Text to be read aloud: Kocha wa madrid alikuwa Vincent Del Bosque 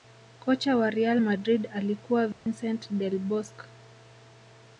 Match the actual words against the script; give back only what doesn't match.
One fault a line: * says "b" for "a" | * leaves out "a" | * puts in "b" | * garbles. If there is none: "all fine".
* puts in "real"